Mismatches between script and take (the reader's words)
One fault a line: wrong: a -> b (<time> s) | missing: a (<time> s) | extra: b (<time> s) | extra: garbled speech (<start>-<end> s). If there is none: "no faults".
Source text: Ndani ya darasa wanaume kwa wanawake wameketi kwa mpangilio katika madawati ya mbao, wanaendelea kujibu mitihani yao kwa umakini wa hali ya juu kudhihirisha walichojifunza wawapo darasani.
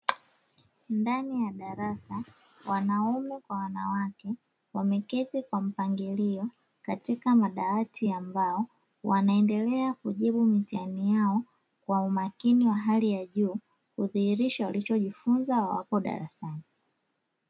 no faults